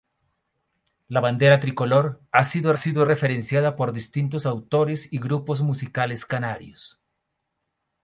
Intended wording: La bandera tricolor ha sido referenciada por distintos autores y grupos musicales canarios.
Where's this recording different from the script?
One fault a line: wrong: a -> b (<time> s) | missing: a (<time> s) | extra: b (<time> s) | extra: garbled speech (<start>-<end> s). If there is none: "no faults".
extra: sido (2.7 s)